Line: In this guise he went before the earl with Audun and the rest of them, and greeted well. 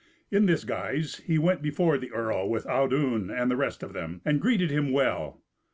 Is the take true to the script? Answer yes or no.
no